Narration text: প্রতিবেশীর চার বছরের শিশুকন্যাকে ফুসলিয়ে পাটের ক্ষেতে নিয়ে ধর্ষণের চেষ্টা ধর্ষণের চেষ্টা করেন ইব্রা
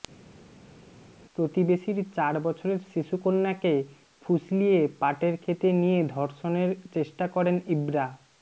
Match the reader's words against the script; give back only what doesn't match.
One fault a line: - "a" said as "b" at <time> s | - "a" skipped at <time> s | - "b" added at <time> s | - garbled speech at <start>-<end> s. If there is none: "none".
- "ধর্ষণের চেষ্টা" skipped at 7.2 s